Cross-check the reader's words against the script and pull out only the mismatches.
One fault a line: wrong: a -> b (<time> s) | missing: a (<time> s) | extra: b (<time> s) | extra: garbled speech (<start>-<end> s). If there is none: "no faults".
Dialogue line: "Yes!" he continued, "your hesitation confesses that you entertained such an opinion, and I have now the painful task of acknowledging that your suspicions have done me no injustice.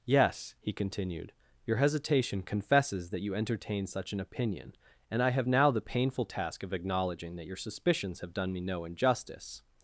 wrong: entertained -> entertain (3.4 s)